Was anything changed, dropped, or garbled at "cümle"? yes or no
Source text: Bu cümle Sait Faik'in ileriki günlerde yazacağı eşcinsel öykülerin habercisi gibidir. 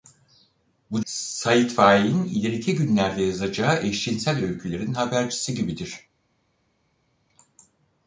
yes